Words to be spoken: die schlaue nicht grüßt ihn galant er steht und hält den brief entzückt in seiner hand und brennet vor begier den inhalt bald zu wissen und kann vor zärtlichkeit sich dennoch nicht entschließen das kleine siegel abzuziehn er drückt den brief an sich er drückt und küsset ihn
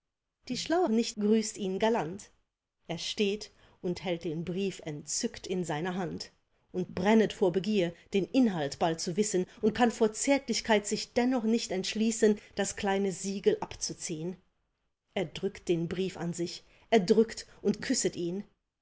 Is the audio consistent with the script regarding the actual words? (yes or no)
yes